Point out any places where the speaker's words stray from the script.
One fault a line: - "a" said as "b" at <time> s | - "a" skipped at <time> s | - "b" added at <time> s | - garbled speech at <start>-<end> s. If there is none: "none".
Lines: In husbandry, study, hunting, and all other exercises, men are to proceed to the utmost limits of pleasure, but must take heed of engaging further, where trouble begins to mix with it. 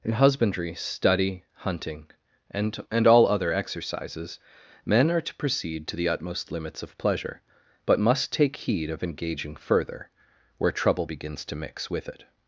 - "and" added at 2.9 s